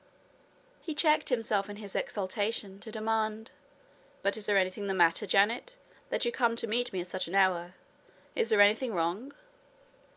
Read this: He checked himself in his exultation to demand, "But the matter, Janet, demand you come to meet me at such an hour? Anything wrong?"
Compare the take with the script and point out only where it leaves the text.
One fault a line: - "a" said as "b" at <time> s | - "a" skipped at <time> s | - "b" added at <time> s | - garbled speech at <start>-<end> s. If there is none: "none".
- "is there anything" added at 4.3 s
- "demand" said as "that" at 6.1 s
- "Is there" added at 8.3 s